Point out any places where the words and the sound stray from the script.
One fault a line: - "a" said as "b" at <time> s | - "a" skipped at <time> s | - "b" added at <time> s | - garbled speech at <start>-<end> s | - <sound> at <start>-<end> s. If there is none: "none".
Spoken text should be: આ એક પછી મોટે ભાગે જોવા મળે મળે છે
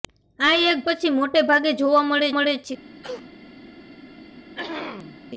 - cough at 3.0-3.3 s
- throat clearing at 4.5-5.2 s